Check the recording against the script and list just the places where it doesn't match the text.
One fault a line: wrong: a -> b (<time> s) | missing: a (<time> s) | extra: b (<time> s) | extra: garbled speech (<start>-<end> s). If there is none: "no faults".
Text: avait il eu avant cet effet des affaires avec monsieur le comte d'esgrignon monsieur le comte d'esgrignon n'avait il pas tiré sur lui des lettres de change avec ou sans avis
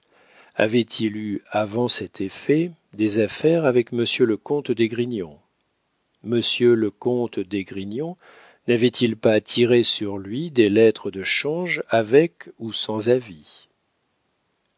no faults